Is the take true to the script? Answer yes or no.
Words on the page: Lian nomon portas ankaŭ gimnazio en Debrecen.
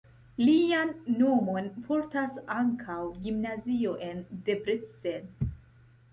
yes